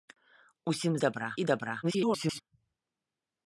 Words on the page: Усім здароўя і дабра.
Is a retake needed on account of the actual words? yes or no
yes